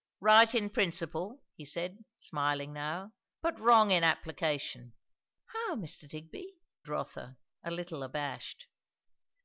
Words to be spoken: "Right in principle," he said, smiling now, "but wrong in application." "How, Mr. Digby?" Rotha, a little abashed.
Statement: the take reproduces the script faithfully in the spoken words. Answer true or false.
true